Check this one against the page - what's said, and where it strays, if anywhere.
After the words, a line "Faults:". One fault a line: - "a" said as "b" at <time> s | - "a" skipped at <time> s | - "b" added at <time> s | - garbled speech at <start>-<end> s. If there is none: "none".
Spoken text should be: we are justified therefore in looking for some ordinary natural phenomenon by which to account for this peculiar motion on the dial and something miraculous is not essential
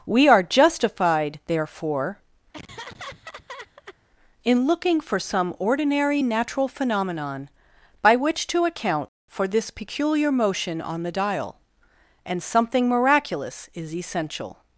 we are justified therefore in looking for some ordinary natural phenomenon by which to account for this peculiar motion on the dial and something miraculous is essential
Faults:
- "not" skipped at 13.9 s